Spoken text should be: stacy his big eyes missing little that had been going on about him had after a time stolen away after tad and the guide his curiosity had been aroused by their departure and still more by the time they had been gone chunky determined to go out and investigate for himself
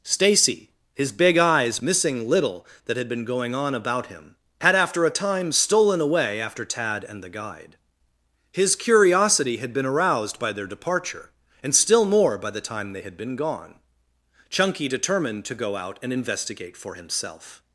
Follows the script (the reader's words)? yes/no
yes